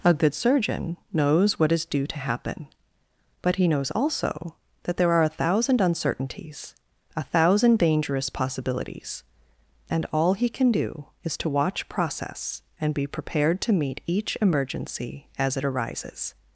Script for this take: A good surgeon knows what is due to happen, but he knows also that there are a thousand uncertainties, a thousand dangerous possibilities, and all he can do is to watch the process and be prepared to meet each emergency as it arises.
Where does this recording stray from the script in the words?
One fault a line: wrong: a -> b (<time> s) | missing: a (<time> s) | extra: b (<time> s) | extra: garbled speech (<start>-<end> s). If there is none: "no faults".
missing: the (11.9 s)